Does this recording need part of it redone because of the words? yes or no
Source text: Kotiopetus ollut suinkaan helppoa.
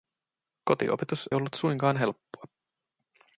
no